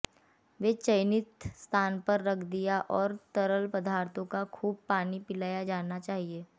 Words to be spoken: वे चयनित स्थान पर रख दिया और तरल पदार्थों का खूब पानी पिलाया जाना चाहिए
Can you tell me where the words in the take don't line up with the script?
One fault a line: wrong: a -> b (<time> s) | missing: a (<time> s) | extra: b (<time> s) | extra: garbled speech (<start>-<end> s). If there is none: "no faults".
no faults